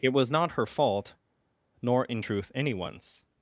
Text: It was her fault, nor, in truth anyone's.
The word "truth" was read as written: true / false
true